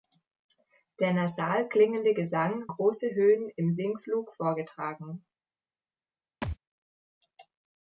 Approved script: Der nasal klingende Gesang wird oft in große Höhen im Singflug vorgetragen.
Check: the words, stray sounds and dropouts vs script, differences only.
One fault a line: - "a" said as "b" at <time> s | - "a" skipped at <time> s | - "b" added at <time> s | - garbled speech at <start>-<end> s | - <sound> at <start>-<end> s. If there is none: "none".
- "wird oft in" skipped at 2.6 s
- thud at 6.4-6.6 s